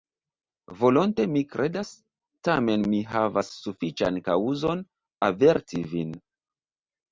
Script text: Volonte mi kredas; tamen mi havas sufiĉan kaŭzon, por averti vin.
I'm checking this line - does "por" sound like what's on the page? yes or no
no